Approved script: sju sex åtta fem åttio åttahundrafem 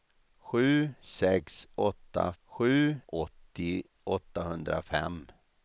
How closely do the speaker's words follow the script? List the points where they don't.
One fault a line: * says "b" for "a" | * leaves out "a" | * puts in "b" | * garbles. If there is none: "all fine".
* says "sju" for "fem"